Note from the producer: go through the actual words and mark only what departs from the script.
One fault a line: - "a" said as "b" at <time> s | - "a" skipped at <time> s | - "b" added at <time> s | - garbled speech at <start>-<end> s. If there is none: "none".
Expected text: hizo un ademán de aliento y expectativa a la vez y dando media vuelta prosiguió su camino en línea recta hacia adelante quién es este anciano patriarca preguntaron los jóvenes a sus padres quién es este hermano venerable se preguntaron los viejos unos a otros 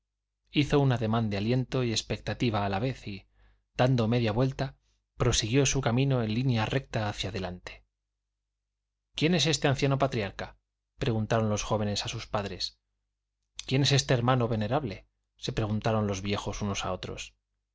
none